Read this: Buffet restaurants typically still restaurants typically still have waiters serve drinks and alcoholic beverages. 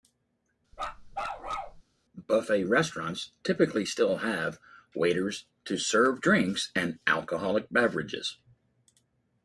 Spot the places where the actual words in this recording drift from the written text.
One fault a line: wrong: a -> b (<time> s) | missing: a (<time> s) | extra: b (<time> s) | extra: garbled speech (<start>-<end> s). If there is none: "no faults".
missing: restaurants typically still (4.2 s)
extra: to (5.6 s)